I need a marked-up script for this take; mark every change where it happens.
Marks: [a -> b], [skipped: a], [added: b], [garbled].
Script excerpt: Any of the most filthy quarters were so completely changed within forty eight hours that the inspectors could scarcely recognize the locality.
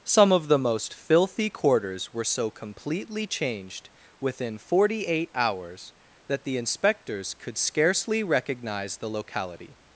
[Any -> Some] of the most filthy quarters were so completely changed within forty eight hours that the inspectors could scarcely recognize the locality.